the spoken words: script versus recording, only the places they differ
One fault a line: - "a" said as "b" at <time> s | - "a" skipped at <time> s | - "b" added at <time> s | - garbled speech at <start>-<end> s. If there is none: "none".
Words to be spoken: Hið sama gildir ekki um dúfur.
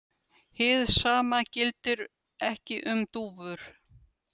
none